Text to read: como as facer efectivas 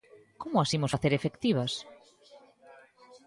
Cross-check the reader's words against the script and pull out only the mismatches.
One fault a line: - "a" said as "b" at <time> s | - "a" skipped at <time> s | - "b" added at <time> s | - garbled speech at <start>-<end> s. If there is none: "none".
- "imos" added at 0.8 s